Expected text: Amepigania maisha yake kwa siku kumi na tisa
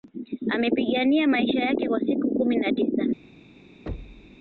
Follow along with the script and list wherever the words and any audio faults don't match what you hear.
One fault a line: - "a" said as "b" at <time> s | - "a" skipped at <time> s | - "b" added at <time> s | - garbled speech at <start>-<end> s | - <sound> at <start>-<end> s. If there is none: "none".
- thud at 3.9-4.4 s